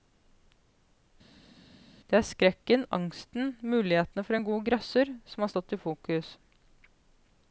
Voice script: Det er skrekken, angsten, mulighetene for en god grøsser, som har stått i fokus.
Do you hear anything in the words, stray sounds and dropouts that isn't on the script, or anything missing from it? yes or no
no